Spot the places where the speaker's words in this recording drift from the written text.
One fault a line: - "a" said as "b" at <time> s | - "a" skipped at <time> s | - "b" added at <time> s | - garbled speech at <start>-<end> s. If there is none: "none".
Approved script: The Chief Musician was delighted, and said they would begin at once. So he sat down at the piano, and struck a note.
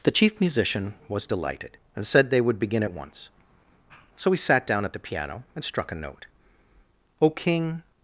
- "O King" added at 7.2 s